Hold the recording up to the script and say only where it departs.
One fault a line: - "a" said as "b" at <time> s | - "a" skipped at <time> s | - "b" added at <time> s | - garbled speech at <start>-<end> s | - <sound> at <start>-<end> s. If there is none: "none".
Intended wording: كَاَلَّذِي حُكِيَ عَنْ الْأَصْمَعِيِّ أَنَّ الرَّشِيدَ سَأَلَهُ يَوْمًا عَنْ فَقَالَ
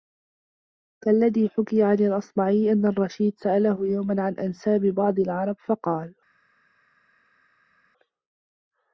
- "أَنْسَابِ بَعْضِ الْعَرَبِ" added at 4.4 s